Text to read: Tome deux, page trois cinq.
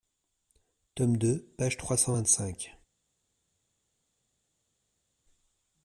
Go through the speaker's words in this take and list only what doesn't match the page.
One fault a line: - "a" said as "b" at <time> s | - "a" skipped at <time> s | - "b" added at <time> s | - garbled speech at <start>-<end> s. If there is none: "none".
- "cent vingt" added at 1.9 s